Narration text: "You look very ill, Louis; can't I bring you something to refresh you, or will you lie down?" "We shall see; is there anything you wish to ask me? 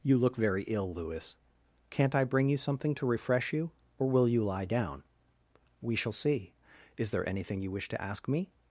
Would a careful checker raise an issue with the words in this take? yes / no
no